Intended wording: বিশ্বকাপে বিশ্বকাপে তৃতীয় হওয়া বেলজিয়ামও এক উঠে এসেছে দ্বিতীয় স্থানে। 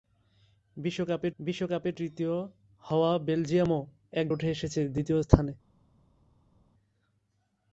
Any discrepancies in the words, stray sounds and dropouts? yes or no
no